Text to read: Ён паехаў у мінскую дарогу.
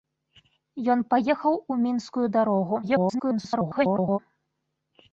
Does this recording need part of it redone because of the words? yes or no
yes